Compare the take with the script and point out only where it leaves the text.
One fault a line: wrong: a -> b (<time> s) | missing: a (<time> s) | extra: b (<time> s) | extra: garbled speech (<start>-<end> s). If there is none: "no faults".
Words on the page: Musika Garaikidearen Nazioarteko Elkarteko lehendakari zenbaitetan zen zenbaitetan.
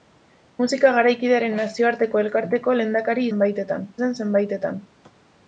no faults